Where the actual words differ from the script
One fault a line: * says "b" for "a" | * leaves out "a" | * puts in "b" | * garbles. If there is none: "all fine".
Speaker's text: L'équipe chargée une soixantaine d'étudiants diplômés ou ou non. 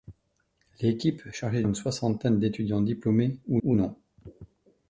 all fine